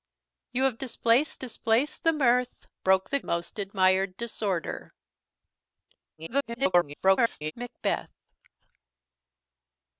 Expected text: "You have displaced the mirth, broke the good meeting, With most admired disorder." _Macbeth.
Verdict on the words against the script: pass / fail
fail